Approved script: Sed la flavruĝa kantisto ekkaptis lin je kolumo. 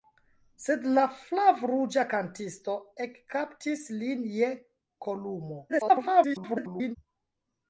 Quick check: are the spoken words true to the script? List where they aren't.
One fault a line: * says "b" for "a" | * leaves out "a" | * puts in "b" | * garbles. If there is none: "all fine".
* garbles